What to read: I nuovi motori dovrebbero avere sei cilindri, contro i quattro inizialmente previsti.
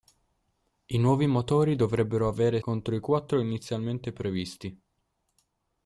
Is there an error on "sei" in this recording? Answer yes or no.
yes